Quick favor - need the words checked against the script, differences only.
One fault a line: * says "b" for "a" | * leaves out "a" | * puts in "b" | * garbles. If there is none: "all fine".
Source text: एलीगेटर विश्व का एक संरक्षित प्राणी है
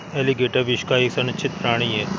all fine